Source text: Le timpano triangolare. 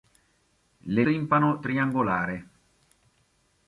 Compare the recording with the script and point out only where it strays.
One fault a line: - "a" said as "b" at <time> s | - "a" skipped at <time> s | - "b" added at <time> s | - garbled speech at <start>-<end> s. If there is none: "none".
none